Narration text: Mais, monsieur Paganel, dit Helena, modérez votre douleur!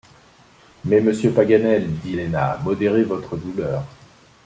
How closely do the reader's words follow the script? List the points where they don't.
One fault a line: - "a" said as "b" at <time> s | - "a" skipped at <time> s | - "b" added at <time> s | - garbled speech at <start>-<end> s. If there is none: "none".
none